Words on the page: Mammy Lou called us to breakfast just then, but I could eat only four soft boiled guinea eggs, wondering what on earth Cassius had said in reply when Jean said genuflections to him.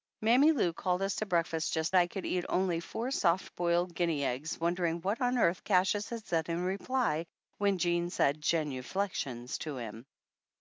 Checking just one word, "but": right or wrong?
wrong